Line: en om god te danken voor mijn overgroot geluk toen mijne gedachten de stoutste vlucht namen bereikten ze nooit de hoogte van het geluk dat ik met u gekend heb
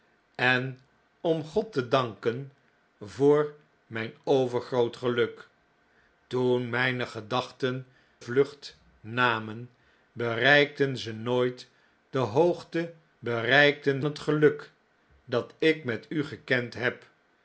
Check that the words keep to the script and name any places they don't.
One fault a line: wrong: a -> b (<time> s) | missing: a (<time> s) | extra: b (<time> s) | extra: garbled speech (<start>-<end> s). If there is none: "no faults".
missing: de stoutste (7.9 s)
wrong: van -> bereikten (13.2 s)